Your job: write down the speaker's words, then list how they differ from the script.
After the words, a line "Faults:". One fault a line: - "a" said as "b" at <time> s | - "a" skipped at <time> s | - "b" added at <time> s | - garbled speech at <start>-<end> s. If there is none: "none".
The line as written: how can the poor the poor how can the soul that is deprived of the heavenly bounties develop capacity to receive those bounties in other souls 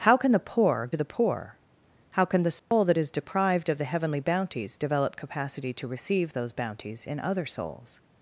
how can the poor the poor how can the soul that is deprived of the heavenly bounties develop capacity to receive those bounties in other souls
Faults:
none